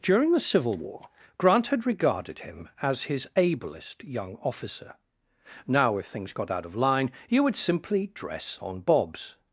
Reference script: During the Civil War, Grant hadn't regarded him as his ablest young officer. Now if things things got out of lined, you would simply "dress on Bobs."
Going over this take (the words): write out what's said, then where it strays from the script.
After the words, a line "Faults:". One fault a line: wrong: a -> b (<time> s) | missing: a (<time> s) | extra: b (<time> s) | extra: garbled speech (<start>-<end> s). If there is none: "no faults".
During the Civil War, Grant had regarded him as his ablest young officer. Now if things got out of line, you would simply "dress on Bobs."
Faults:
wrong: hadn't -> had (1.7 s)
missing: things (6.3 s)
wrong: lined -> line (6.8 s)